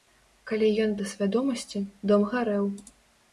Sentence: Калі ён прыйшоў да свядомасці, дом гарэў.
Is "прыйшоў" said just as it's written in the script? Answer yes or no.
no